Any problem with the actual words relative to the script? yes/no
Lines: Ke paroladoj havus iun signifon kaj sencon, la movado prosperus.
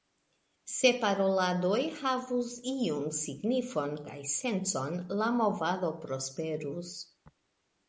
yes